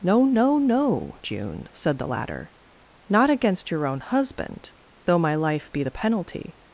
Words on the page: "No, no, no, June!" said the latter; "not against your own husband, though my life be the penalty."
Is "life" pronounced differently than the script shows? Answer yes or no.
no